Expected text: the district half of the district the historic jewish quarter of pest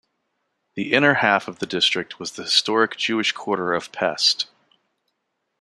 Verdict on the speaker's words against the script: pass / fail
fail